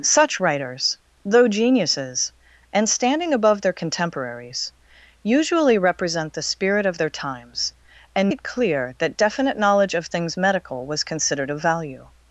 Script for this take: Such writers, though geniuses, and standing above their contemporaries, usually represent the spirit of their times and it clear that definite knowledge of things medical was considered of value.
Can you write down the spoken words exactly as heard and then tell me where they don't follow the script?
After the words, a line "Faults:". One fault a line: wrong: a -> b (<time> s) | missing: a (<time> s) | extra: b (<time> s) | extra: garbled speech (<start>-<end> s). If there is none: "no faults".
Such writers, though geniuses, and standing above their contemporaries, usually represent the spirit of their times and it clear that definite knowledge of things medical was considered of value.
Faults:
no faults